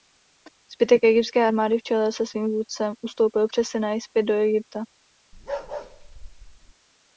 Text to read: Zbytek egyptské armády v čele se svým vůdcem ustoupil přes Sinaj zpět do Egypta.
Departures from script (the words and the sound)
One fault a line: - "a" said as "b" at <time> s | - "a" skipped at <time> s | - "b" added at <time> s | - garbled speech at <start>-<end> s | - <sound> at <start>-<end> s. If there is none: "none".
- bark at 5.3-6.7 s